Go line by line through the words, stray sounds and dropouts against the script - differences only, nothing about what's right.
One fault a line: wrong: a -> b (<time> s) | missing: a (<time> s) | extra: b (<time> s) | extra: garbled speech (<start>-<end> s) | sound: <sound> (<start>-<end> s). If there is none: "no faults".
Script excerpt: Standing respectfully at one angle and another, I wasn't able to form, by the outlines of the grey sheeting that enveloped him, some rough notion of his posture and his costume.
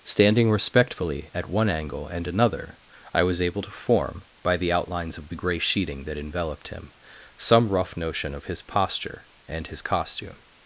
wrong: wasn't -> was (3.2 s)